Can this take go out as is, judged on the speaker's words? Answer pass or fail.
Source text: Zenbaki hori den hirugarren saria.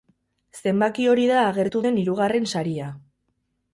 fail